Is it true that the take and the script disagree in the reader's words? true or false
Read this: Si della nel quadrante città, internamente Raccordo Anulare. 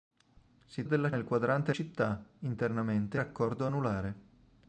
false